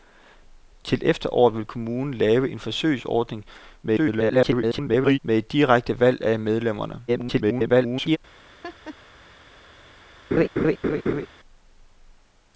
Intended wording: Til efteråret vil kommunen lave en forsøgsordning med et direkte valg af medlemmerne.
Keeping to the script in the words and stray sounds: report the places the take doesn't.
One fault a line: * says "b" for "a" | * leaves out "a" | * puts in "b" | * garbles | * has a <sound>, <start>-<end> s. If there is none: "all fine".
* garbles
* garbles
* has a laugh, 8.6-9.0 s
* has a laugh, 10.3-11.3 s